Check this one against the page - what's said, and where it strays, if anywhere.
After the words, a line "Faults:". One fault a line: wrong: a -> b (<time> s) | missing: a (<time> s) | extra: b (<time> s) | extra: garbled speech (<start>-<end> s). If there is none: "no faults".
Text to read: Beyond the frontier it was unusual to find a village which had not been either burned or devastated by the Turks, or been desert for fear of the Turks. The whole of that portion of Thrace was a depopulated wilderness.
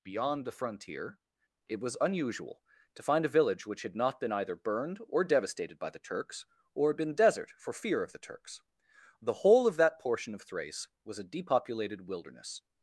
Beyond the frontier it was unusual to find a village which had not been either burned or devastated by the Turks, or been desert for fear of the Turks. The whole of that portion of Thrace was a depopulated wilderness.
Faults:
no faults